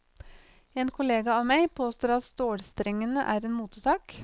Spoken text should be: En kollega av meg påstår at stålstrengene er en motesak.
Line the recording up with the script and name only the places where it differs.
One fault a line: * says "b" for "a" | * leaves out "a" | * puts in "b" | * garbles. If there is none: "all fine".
all fine